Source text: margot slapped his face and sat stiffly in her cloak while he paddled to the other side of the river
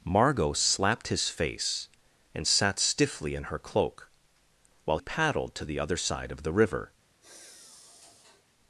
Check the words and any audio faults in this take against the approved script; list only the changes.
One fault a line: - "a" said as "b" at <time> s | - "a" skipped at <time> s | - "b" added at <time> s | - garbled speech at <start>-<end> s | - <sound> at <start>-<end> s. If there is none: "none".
- "he" skipped at 5.0 s
- sigh at 7.2-8.4 s